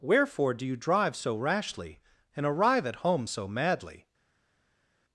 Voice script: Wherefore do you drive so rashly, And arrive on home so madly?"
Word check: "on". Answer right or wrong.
wrong